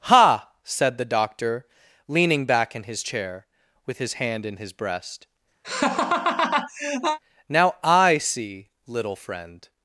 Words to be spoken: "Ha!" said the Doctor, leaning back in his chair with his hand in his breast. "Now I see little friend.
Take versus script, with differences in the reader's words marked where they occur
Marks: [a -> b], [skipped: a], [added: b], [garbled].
"Ha!" said the Doctor, leaning back in his chair with his hand in his breast. "Now I see little friend.